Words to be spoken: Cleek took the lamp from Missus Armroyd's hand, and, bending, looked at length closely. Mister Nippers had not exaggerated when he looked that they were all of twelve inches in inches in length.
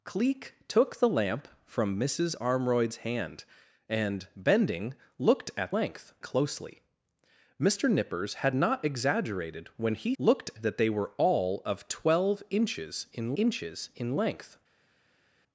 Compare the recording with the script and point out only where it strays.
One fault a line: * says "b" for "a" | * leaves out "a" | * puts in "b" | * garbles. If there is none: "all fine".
all fine